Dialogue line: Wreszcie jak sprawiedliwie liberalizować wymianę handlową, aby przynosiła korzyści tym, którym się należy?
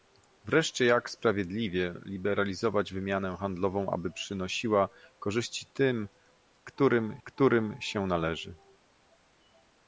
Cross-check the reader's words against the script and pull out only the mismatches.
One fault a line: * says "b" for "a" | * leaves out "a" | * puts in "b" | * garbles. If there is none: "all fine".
* puts in "którym"